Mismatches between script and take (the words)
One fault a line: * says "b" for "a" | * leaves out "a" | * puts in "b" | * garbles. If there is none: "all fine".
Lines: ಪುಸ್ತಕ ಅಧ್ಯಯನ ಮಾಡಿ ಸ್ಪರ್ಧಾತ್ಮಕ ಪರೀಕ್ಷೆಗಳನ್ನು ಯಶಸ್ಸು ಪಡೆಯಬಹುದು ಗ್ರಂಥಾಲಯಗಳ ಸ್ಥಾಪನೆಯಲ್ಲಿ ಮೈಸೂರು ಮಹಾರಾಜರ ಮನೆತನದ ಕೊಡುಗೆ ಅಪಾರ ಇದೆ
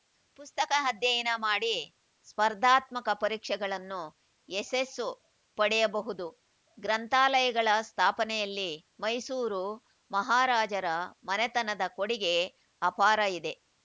all fine